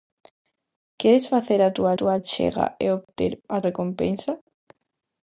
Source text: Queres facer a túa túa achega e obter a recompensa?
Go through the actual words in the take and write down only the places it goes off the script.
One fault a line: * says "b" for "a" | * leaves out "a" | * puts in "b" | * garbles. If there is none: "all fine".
all fine